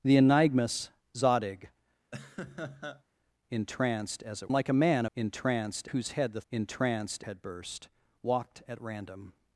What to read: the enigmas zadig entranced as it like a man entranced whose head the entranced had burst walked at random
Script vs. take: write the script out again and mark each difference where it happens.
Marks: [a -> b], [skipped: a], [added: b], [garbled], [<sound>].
the enigmas zadig [laugh] entranced as it like a man entranced whose head the entranced had burst walked at random